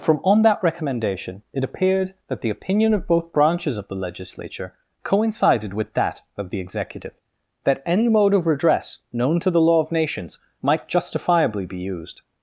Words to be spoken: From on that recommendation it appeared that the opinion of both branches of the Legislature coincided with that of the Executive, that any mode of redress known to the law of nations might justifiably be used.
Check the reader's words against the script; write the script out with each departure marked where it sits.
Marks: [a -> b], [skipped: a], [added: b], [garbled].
From on that recommendation it appeared that the opinion of both branches of the Legislature coincided with that of the Executive, that any mode of redress known to the law of nations might justifiably be used.